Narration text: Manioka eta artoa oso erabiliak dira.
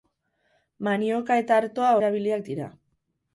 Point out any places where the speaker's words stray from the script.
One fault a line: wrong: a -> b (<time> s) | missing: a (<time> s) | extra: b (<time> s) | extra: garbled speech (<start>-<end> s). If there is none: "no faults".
missing: oso (1.9 s)